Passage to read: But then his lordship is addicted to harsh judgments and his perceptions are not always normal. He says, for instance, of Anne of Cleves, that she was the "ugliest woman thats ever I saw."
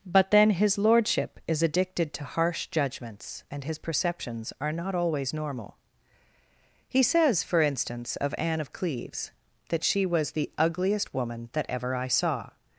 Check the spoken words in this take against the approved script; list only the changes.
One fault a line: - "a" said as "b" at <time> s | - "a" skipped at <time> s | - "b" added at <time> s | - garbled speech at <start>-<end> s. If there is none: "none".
- "thats" said as "that" at 11.5 s